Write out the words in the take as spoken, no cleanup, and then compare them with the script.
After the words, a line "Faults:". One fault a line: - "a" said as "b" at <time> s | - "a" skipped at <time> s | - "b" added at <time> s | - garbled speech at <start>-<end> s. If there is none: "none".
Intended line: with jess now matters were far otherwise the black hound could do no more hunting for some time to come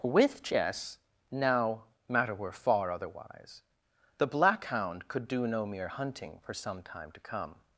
with jess now matter were far otherwise the black hound could do no mere hunting for some time to come
Faults:
- "matters" said as "matter" at 2.1 s
- "more" said as "mere" at 5.7 s